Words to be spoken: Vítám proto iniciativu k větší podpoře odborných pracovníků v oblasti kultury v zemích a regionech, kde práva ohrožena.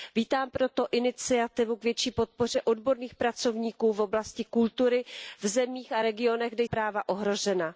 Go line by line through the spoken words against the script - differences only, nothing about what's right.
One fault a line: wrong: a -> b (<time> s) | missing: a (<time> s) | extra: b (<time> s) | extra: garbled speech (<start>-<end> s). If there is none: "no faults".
no faults